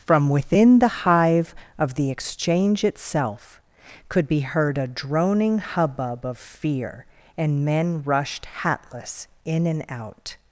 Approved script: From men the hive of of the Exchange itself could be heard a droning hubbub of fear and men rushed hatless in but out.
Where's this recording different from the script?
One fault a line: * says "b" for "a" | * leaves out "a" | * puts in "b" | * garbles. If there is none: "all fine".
* says "within" for "men"
* leaves out "of"
* says "and" for "but"